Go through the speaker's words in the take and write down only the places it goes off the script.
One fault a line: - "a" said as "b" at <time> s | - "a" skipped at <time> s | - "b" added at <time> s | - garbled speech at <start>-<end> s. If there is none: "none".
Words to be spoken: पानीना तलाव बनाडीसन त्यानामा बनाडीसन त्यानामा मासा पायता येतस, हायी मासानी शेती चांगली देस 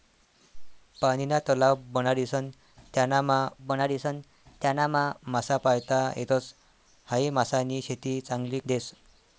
none